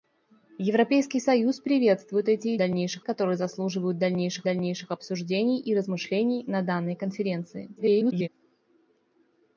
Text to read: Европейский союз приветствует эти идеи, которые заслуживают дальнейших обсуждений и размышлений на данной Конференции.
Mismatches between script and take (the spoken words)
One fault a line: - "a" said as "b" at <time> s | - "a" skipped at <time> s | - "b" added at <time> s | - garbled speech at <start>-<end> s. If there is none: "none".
- "идеи" said as "дальнейших" at 2.6 s
- "дальнейших" added at 4.4 s
- garbled speech at 7.8-8.3 s